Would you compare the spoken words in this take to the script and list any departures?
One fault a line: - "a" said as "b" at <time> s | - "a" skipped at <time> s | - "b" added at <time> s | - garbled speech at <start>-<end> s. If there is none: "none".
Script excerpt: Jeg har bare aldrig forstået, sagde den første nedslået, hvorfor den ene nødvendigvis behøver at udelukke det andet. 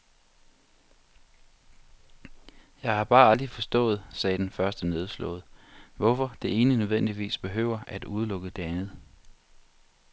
- "den" said as "det" at 6.4 s